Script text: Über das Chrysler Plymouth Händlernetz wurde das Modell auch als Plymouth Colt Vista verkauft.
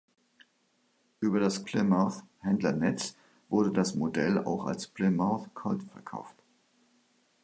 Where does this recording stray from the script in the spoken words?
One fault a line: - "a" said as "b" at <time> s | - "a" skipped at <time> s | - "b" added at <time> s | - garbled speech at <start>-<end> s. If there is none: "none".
- "Chrysler" skipped at 1.6 s
- "Vista" skipped at 5.9 s